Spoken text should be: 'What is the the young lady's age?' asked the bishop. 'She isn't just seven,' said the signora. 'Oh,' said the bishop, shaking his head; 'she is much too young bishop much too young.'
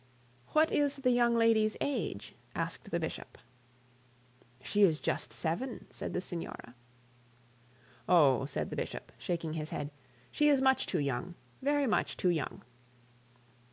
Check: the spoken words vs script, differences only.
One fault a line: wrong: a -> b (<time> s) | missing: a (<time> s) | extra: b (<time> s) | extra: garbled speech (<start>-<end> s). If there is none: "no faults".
missing: the (1.1 s)
wrong: isn't -> is (4.8 s)
wrong: bishop -> very (11.6 s)